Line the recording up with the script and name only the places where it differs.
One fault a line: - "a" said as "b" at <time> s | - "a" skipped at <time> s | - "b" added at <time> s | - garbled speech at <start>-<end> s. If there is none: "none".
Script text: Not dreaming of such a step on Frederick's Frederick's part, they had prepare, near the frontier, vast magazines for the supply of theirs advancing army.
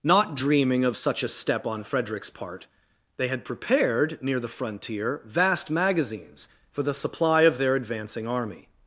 - "Frederick's" skipped at 2.3 s
- "prepare" said as "prepared" at 3.4 s
- "theirs" said as "their" at 7.6 s